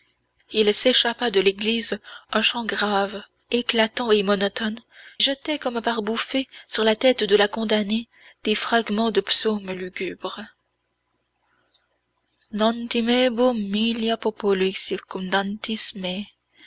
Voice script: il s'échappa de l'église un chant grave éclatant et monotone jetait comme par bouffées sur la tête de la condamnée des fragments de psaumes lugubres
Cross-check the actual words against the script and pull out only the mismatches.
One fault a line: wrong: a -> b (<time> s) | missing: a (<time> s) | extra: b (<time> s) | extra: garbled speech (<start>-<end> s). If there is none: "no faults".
no faults